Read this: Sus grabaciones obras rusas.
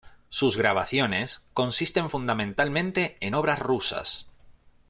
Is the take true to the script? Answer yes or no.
no